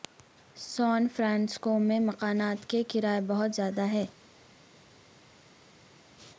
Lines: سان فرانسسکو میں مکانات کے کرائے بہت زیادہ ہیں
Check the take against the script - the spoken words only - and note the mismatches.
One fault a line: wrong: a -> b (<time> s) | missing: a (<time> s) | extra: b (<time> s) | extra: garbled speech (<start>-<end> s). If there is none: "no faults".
no faults